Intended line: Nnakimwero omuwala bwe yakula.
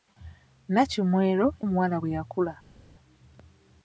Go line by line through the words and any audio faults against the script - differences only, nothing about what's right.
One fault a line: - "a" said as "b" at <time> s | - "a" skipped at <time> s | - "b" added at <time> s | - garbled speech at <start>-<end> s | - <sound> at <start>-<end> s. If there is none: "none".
none